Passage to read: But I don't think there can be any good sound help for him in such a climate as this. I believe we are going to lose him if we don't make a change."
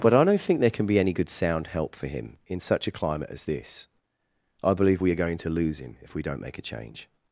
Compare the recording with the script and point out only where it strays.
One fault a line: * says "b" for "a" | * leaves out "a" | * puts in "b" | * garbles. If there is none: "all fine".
all fine